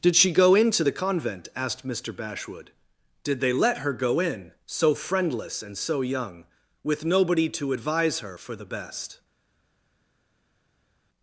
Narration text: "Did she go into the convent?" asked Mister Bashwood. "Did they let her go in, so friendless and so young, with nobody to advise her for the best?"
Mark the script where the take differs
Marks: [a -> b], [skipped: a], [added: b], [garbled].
"Did she go into the convent?" asked Mister Bashwood. "Did they let her go in, so friendless and so young, with nobody to advise her for the best?"